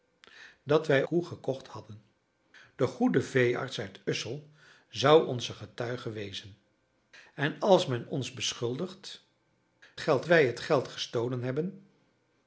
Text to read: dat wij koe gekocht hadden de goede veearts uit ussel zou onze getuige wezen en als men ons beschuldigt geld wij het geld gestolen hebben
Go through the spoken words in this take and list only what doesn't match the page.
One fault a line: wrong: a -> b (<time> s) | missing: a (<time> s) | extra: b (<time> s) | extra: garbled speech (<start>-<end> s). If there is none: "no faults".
no faults